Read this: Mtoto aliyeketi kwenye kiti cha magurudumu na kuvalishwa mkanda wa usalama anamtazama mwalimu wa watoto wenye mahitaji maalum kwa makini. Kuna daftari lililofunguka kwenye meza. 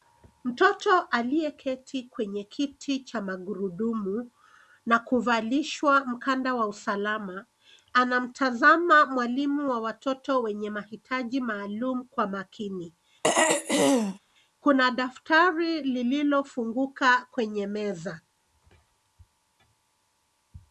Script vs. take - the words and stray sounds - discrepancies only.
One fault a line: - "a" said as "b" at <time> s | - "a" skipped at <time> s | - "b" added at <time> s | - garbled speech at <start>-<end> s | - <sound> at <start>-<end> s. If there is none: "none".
- throat clearing at 13.2-14.2 s